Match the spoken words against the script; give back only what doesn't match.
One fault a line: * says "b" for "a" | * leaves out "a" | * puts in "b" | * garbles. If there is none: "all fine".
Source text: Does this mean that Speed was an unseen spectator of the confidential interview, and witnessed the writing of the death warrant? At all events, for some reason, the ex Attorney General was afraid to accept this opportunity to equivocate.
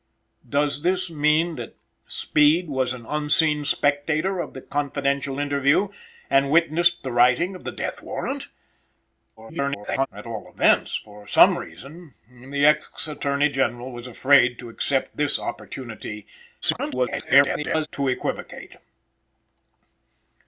* garbles
* garbles